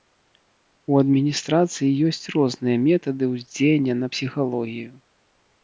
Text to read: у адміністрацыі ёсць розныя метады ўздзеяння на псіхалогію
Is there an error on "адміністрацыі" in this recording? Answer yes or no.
no